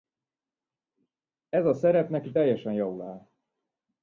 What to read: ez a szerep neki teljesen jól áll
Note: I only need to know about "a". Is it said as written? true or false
true